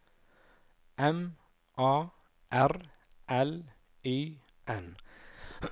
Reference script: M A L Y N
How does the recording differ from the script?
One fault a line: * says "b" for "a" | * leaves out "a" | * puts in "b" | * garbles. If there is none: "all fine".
* puts in "R"